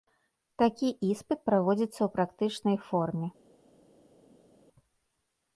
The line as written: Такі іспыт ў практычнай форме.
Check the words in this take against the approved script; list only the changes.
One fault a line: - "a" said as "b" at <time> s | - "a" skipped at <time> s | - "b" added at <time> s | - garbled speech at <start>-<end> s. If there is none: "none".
- "праводзіцца" added at 1.5 s